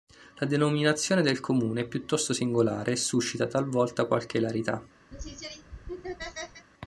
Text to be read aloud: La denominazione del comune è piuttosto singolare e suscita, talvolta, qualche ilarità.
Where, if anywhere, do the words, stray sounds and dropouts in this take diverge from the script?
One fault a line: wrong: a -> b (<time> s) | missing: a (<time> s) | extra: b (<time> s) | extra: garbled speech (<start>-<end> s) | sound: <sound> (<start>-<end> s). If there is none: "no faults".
sound: laugh (5.1-6.7 s)